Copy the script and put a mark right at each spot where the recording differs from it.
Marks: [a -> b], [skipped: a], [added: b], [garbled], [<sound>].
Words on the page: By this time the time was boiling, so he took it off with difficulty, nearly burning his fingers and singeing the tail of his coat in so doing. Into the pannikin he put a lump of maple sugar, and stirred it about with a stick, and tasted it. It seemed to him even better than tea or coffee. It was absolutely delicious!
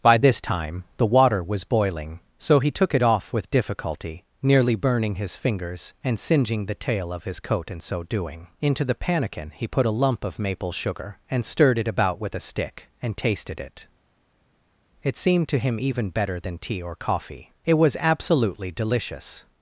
By this time the [time -> water] was boiling, so he took it off with difficulty, nearly burning his fingers and singeing the tail of his coat in so doing. Into the pannikin he put a lump of maple sugar, and stirred it about with a stick, and tasted it. It seemed to him even better than tea or coffee. It was absolutely delicious!